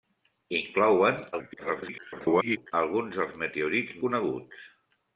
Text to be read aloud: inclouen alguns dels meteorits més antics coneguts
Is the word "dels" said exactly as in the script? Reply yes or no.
yes